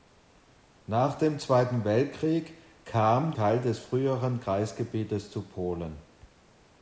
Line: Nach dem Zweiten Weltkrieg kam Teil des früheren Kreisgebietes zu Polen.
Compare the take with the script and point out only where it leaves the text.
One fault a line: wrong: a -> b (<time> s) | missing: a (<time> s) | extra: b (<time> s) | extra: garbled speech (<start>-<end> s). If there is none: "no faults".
no faults